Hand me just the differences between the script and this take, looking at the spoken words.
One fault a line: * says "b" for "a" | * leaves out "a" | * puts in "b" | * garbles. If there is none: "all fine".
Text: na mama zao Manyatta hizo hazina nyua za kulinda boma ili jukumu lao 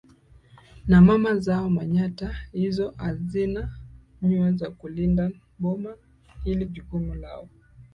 all fine